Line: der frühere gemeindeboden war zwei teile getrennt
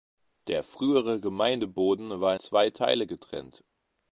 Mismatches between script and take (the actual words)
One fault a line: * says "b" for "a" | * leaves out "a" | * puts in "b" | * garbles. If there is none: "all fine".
all fine